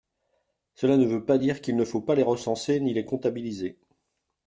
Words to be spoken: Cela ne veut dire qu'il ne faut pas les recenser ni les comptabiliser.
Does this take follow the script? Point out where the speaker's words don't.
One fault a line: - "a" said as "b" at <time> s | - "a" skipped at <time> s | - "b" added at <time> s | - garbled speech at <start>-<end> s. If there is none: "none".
- "pas" added at 1.2 s